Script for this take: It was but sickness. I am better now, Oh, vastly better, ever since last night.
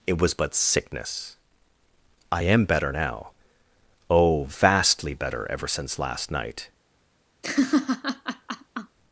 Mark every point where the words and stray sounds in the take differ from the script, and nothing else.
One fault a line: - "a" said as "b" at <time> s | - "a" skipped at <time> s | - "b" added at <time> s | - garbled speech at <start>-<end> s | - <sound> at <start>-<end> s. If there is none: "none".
- laugh at 7.4-9.0 s